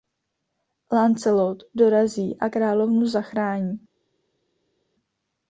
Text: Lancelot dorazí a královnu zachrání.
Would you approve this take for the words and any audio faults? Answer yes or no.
yes